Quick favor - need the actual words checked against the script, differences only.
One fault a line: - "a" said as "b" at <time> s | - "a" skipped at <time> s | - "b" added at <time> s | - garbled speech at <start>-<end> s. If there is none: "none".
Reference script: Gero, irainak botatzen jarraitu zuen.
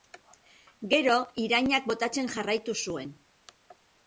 none